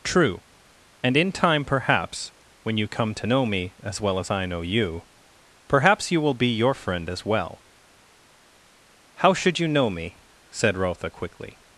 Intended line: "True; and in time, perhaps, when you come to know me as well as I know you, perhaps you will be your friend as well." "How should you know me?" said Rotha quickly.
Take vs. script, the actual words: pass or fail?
pass